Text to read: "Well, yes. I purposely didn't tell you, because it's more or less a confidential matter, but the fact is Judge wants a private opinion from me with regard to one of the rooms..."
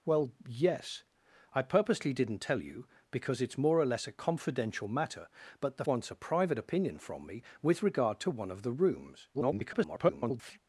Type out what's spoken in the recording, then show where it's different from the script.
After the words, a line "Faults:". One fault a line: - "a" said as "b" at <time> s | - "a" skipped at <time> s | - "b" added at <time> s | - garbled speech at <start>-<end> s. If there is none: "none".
"Well, yes. I purposely didn't tell you, because it's more or less a confidential matter, but the wants a private opinion from me with regard to one of the rooms..." [garbled]
Faults:
- "fact is Judge" skipped at 5.8 s
- garbled speech at 9.3-10.6 s